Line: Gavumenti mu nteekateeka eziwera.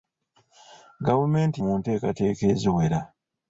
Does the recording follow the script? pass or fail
pass